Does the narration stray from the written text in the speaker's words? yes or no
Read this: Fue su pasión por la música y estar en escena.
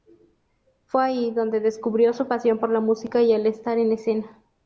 yes